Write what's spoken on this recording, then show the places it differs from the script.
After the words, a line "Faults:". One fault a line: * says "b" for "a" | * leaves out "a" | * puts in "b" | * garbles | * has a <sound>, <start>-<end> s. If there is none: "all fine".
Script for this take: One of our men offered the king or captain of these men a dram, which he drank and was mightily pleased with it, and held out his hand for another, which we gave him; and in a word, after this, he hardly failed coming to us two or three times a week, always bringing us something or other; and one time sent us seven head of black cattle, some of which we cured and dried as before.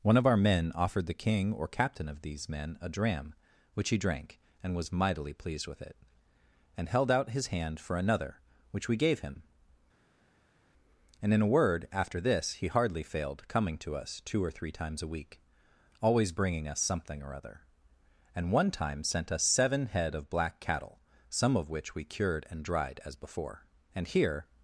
One of our men offered the king or captain of these men a dram, which he drank and was mightily pleased with it, and held out his hand for another, which we gave him; and in a word, after this, he hardly failed coming to us two or three times a week, always bringing us something or other; and one time sent us seven head of black cattle, some of which we cured and dried as before. And here
Faults:
* puts in "And here"